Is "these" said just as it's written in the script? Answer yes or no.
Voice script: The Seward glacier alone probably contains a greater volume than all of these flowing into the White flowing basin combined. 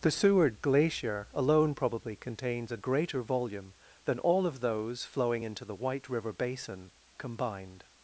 no